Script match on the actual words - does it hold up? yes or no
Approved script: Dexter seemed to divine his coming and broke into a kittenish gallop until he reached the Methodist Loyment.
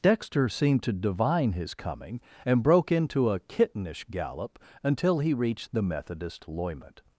yes